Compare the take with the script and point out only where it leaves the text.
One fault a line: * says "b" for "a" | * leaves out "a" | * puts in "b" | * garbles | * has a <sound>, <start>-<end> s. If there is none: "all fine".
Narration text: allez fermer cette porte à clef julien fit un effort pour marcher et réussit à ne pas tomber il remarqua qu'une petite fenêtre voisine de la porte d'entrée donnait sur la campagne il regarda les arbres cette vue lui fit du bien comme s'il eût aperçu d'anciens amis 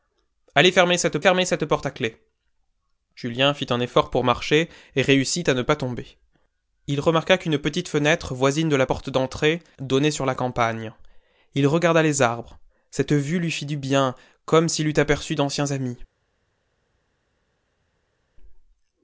* puts in "fermer cette"